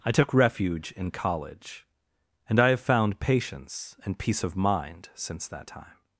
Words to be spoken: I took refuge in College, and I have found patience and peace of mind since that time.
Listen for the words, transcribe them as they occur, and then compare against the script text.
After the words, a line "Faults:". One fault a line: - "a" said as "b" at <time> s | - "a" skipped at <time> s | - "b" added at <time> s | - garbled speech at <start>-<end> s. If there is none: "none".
I took refuge in College, and I have found patience and peace of mind since that time.
Faults:
none